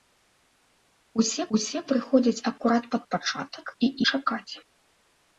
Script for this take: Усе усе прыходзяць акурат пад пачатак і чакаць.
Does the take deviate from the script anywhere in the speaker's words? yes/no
no